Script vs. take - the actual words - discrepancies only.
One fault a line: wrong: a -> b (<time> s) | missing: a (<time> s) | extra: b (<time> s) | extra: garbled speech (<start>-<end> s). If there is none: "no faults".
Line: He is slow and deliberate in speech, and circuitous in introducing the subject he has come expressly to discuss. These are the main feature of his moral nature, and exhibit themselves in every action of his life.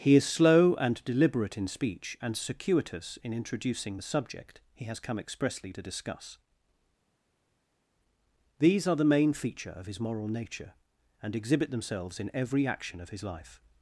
no faults